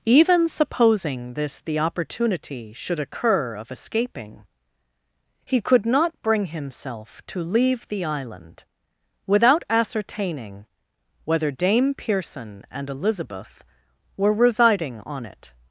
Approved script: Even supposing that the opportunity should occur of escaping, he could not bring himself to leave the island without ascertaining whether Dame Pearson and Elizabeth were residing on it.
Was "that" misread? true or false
true